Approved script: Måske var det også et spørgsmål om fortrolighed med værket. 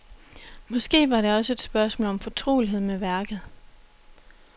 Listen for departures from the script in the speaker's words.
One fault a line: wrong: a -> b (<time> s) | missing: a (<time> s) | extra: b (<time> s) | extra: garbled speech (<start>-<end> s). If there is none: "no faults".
no faults